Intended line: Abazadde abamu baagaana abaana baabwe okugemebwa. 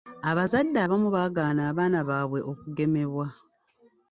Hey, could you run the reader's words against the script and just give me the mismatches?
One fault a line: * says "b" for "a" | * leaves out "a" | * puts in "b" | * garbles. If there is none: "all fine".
all fine